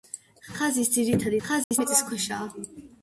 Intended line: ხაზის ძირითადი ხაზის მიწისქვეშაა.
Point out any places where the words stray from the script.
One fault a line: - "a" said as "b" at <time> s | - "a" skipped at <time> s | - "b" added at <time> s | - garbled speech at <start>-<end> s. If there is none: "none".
none